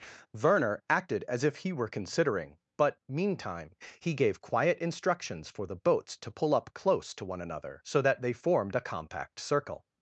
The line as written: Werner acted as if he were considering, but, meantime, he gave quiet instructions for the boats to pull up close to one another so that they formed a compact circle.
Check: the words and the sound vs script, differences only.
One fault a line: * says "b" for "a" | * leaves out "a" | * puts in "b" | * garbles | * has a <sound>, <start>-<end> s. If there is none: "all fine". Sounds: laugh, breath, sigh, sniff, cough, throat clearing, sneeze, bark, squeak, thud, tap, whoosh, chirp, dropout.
all fine